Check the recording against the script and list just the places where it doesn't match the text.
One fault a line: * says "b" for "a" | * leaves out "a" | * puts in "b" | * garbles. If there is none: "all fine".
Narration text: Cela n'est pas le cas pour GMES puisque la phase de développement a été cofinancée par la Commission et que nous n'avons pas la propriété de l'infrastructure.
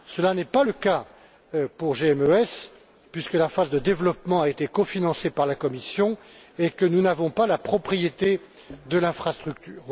all fine